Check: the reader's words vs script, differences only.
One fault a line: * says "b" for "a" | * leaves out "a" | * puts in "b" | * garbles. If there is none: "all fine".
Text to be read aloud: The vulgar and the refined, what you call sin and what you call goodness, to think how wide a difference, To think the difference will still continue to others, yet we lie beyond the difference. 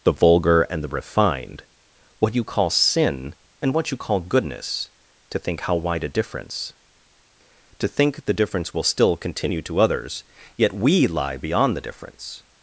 all fine